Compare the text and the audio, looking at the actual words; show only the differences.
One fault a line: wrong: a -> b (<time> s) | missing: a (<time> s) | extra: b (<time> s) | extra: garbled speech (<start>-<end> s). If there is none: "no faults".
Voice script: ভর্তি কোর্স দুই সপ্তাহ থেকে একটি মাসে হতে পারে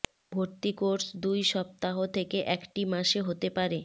no faults